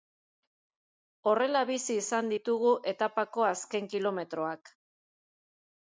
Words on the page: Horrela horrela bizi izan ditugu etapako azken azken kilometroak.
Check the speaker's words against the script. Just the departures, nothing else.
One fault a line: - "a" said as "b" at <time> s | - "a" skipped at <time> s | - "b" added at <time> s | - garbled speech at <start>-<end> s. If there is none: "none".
- "horrela" skipped at 1.6 s
- "azken" skipped at 3.9 s